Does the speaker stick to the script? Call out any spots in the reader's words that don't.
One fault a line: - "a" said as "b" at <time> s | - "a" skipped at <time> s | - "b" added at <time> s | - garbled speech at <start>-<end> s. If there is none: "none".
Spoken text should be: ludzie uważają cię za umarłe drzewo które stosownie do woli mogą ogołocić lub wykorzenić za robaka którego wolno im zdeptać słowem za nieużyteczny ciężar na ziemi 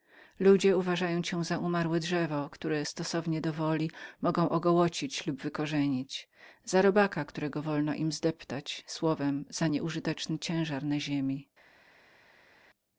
none